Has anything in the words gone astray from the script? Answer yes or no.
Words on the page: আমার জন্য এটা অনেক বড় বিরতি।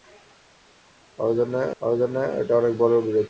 yes